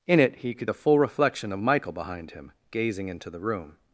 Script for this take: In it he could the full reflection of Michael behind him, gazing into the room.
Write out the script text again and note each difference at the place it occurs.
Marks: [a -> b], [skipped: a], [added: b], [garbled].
In it he could the full reflection of Michael behind him, gazing into the room.